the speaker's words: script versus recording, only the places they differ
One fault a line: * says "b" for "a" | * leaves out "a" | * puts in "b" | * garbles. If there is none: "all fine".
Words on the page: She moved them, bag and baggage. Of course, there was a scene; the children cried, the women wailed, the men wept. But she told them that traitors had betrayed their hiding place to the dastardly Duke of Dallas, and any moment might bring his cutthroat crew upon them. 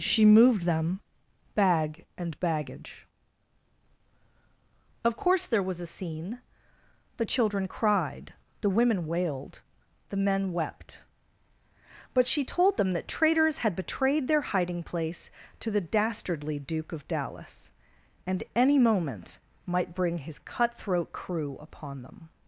all fine